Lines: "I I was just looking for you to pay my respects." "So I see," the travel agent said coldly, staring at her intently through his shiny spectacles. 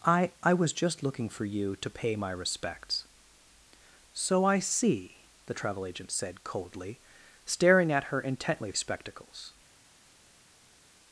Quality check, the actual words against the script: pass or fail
fail